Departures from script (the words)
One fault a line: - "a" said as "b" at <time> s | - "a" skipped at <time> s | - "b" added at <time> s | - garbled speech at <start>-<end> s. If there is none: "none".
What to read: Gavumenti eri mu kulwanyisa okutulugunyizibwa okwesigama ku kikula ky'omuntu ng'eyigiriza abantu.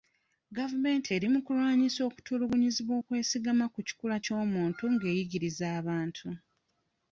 none